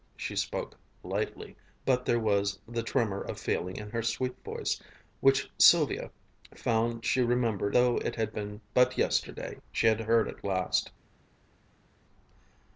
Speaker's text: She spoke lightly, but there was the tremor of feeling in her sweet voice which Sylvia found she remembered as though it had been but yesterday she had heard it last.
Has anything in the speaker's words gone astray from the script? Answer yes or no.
yes